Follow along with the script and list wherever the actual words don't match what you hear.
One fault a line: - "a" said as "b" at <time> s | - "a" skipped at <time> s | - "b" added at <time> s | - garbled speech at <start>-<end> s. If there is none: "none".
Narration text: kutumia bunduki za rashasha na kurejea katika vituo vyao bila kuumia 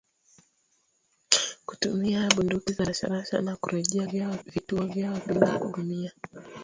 - "katika" said as "vyao" at 4.0 s